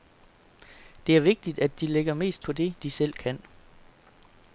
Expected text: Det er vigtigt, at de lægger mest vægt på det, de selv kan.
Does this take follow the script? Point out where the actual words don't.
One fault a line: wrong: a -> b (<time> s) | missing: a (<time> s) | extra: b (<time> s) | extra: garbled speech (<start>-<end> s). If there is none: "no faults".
missing: vægt (2.5 s)